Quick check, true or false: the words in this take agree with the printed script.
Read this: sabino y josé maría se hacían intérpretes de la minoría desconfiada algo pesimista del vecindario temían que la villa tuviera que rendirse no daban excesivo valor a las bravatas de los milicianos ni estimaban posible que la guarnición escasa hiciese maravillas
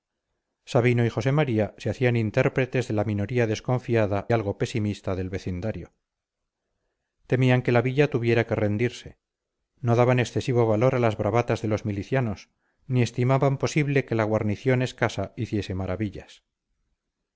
true